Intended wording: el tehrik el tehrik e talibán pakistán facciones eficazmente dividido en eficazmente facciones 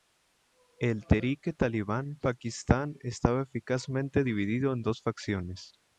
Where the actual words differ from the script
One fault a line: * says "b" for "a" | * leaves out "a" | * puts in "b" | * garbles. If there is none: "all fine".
* leaves out "el tehrik"
* says "estaba" for "facciones"
* says "dos" for "eficazmente"